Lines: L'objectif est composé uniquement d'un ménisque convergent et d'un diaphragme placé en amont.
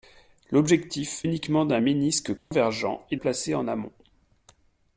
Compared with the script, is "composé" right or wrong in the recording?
wrong